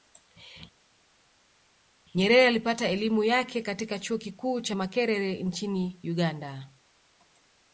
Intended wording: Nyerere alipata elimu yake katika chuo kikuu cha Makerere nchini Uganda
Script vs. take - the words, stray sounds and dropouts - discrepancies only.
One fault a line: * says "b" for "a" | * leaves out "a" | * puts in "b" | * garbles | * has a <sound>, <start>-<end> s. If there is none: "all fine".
all fine